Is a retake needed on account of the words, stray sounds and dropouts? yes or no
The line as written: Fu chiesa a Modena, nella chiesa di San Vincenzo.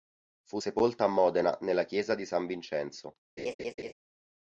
yes